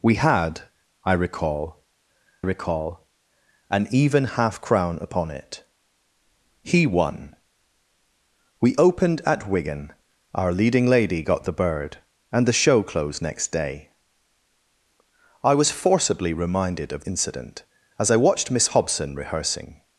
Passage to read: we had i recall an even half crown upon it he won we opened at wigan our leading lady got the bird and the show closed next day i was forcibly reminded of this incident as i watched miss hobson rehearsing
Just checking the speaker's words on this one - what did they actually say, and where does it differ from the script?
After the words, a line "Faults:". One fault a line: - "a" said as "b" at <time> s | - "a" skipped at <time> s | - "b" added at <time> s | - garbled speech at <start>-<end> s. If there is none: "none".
we had i recall recall an even half crown upon it he won we opened at wigan our leading lady got the bird and the show closed next day i was forcibly reminded of incident as i watched miss hobson rehearsing
Faults:
- "recall" added at 2.4 s
- "this" skipped at 17.0 s